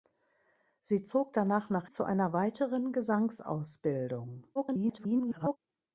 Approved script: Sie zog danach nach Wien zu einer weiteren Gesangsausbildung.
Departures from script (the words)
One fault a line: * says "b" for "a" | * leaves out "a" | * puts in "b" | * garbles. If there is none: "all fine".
* leaves out "Wien"
* garbles